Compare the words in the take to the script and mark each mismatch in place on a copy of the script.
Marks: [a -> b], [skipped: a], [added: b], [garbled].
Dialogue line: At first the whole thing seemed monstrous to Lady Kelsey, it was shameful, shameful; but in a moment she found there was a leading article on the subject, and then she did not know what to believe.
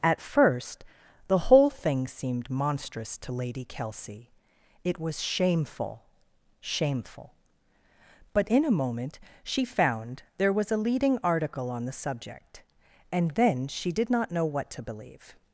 At first the whole thing seemed monstrous to Lady Kelsey, it was shameful, shameful; but in a moment she found there was a leading article on the subject, and then she did not know what to believe.